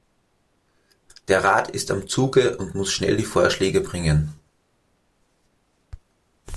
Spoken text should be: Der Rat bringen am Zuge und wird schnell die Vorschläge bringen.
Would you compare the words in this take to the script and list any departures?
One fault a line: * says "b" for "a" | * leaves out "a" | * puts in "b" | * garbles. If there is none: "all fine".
* says "ist" for "bringen"
* says "muss" for "wird"